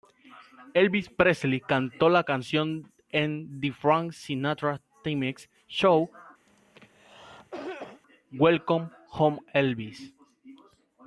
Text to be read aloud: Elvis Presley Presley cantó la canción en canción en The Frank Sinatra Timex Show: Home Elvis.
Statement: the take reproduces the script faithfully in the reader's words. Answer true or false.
false